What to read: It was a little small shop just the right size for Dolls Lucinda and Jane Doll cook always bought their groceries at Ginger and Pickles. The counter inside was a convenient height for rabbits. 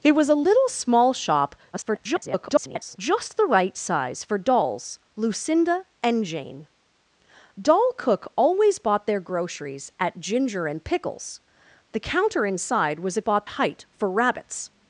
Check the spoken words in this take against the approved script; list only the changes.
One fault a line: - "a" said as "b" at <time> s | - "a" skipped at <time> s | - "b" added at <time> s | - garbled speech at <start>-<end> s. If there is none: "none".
- garbled speech at 1.7-3.0 s
- "convenient" said as "bought" at 13.2 s